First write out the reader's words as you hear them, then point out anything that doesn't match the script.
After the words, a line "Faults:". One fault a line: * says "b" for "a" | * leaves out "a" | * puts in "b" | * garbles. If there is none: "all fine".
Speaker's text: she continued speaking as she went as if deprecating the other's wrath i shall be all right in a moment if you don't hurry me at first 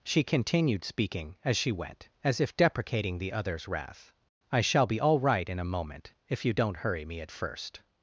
she continued speaking as she went as if deprecating the other's wrath i shall be all right in a moment if you don't hurry me at first
Faults:
all fine